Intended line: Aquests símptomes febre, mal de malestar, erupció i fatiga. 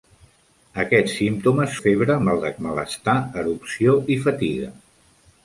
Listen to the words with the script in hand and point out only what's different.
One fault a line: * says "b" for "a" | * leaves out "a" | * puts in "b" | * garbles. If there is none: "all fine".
all fine